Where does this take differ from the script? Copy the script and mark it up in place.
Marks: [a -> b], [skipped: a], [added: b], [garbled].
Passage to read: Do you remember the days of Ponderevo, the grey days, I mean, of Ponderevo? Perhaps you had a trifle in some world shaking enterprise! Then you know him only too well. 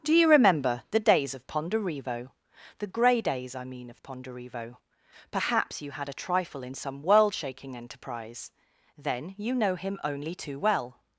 Do you remember the days of Ponderevo, the grey days, I mean, of Ponderevo? Perhaps you had a trifle in some world shaking enterprise! Then you know him only too well.